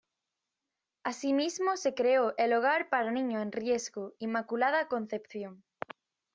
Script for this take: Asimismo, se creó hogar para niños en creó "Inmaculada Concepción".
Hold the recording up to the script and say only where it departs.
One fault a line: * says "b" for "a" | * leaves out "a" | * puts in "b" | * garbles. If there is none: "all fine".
* puts in "el"
* says "riesgo" for "creó"